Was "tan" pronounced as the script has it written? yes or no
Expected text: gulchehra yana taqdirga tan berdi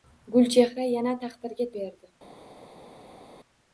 no